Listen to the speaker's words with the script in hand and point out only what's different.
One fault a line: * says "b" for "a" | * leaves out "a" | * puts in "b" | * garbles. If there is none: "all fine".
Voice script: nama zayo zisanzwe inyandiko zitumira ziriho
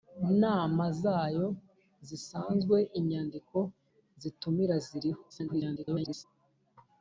* garbles